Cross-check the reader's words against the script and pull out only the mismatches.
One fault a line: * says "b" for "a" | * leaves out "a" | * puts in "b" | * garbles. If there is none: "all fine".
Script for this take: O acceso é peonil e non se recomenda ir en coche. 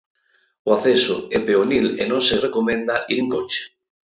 all fine